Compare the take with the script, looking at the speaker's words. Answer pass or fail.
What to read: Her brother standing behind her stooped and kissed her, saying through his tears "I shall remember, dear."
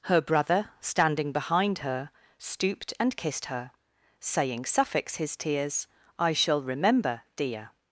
fail